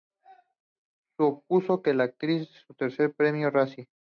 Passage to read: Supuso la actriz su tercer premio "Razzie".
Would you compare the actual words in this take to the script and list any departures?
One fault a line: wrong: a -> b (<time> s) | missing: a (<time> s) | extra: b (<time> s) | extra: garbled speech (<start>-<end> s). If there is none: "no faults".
extra: para (1.8 s)